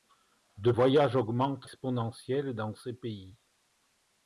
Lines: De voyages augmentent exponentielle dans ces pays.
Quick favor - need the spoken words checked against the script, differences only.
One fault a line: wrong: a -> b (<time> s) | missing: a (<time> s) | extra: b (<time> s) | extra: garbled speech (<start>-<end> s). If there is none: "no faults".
no faults